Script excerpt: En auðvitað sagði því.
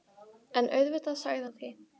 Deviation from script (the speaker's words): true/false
false